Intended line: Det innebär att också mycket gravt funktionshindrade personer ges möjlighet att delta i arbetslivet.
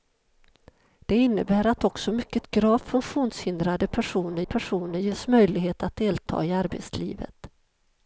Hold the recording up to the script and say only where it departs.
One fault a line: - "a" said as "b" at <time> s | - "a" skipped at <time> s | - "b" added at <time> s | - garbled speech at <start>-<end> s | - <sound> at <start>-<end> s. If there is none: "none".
- "personer" added at 4.4 s